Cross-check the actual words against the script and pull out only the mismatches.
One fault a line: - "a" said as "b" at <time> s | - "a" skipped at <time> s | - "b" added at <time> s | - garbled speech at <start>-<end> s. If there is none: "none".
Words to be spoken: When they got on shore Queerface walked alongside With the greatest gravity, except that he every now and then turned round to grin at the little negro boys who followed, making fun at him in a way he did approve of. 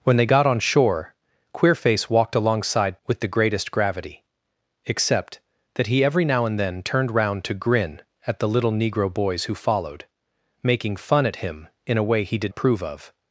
none